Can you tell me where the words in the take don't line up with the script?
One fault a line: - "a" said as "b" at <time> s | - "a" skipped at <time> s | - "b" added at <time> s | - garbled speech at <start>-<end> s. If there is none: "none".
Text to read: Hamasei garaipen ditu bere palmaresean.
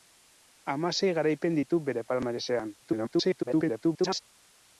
- garbled speech at 2.8-4.2 s